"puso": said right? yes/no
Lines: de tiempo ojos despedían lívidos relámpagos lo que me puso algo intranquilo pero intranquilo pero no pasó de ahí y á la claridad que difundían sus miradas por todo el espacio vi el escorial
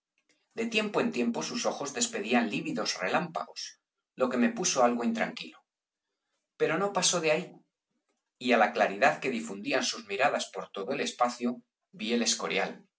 yes